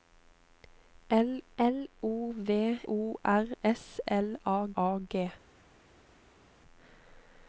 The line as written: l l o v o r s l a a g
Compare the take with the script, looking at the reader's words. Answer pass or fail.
pass